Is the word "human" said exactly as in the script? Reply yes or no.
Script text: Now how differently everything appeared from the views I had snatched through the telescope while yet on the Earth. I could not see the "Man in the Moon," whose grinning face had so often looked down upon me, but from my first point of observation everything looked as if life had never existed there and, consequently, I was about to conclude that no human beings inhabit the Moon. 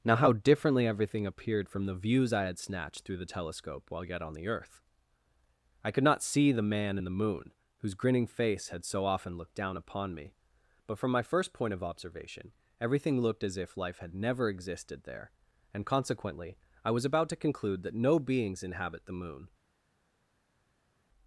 no